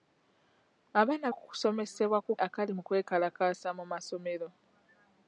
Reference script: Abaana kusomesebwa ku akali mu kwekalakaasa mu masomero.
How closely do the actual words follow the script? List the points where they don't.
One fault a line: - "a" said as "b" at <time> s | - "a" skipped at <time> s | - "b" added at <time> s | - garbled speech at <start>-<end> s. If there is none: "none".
none